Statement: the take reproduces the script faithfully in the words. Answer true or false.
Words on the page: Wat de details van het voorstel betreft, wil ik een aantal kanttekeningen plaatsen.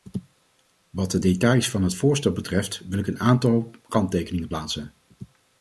true